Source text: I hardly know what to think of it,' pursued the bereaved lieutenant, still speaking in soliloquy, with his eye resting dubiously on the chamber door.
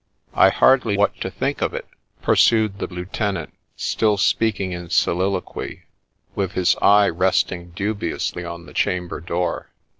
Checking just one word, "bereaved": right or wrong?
wrong